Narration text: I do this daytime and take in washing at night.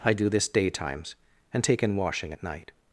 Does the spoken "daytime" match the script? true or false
false